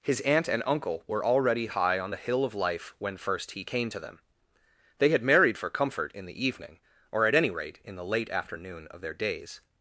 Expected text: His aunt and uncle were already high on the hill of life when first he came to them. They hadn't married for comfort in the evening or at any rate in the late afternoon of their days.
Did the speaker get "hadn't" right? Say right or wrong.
wrong